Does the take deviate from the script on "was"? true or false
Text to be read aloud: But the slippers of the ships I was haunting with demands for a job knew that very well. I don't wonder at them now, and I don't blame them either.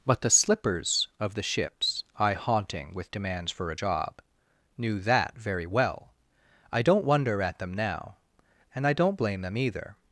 true